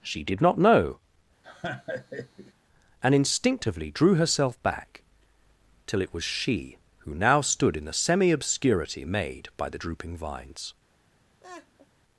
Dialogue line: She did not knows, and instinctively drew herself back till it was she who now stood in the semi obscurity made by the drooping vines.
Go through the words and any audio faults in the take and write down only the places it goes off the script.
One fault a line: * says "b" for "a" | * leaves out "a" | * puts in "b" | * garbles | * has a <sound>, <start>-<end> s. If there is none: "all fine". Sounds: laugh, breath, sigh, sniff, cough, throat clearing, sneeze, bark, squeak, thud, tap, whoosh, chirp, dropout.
* says "know" for "knows"
* has a laugh, 1.4-2.5 s
* has a laugh, 11.4-11.9 s